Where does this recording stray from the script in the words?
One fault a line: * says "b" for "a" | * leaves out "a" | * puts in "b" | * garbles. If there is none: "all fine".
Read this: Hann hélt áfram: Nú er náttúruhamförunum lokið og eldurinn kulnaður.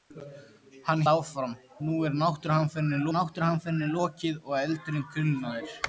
* leaves out "hélt"
* puts in "náttúruhamförunum"